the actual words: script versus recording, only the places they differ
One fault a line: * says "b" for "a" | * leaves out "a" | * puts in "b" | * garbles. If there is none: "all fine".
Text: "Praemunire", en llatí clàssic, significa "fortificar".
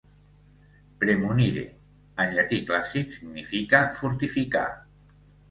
all fine